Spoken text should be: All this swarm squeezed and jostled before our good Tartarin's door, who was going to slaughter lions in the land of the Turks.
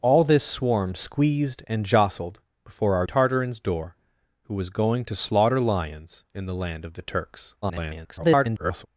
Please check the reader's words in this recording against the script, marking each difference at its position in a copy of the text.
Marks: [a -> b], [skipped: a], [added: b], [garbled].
All this swarm squeezed and jostled before our [skipped: good] Tartarin's door, who was going to slaughter lions in the land of the Turks. [garbled]